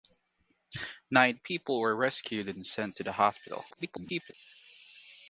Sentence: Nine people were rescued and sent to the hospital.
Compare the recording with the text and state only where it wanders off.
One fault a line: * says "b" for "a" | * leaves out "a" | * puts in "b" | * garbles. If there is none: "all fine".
* garbles